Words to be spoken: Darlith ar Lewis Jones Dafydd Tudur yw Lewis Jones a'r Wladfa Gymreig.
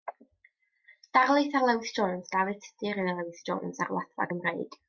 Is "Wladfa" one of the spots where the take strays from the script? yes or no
no